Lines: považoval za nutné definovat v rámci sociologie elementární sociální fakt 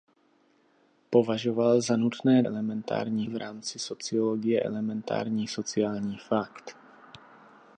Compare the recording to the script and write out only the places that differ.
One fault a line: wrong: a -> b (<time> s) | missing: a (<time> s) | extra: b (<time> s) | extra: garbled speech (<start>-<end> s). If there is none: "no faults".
wrong: definovat -> elementární (2.4 s)